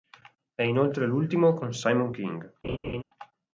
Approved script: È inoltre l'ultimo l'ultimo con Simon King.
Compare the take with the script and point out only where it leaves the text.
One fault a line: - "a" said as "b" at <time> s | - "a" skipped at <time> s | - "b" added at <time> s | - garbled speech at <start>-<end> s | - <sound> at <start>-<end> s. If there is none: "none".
- "l'ultimo" skipped at 1.5 s
- laugh at 2.6-3.0 s